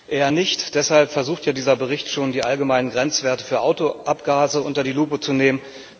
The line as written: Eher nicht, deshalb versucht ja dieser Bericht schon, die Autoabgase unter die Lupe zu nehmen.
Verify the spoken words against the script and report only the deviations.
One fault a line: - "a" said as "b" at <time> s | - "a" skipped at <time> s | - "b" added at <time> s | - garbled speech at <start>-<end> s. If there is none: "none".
- "allgemeinen Grenzwerte für" added at 2.4 s